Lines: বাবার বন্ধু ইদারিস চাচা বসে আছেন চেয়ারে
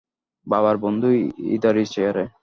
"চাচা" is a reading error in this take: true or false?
true